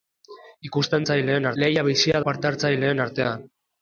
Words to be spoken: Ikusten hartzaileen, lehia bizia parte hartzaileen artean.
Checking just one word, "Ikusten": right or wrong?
right